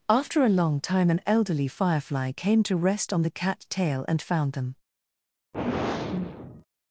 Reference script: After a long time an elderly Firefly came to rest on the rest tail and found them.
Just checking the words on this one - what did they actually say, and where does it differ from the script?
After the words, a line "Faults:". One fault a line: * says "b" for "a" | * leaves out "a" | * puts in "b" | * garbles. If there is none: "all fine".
After a long time an elderly Firefly came to rest on the cat tail and found them.
Faults:
* says "cat" for "rest"